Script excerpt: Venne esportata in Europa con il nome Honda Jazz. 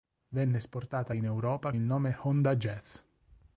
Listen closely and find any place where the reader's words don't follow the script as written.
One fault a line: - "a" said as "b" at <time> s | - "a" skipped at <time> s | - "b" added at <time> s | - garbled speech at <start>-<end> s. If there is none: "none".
- "con" skipped at 1.7 s